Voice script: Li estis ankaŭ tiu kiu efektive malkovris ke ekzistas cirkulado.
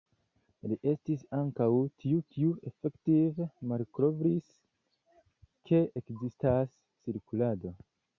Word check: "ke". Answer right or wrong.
right